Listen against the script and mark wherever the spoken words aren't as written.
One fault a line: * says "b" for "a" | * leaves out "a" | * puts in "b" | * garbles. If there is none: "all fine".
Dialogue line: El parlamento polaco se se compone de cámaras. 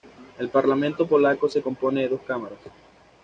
* leaves out "se"
* puts in "dos"